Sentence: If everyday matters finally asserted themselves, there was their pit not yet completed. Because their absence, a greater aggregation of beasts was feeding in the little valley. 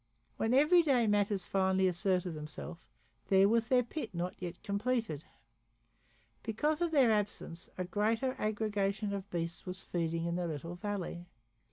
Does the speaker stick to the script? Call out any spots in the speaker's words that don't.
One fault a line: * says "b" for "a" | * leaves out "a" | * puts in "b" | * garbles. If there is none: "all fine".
* says "When" for "If"
* puts in "of"